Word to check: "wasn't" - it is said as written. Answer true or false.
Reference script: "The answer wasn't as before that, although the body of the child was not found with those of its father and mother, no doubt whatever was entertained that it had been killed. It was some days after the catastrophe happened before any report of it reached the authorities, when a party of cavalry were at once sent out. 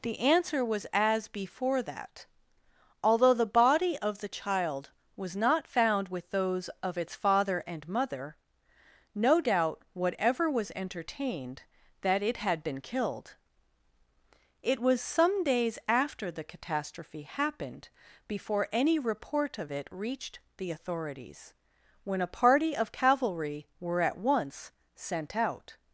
false